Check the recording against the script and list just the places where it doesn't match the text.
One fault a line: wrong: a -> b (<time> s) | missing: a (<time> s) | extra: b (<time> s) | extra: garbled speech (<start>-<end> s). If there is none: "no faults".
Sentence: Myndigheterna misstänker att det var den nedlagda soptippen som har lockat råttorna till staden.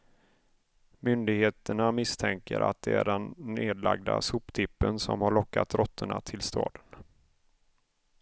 wrong: var -> är (2.9 s)